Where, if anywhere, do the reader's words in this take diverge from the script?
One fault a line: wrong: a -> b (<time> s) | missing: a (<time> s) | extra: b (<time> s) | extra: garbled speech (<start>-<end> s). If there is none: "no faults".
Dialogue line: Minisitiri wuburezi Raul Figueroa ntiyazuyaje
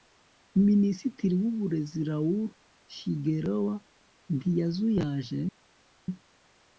no faults